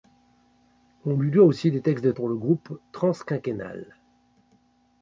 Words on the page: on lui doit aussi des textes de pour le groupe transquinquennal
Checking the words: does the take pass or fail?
pass